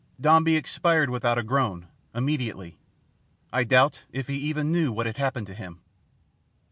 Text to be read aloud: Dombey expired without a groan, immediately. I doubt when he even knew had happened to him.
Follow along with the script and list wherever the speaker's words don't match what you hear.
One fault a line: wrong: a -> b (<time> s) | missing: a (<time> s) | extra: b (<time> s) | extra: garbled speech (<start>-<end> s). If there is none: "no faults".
wrong: when -> if (4.1 s)
extra: what (4.9 s)